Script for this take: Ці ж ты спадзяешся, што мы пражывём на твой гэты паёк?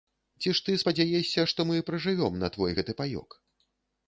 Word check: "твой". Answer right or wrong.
right